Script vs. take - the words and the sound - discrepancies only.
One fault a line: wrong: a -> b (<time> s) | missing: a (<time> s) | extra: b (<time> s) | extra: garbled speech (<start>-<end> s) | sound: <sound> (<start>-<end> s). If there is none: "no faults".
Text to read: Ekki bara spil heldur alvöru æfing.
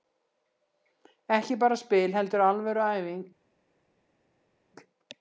no faults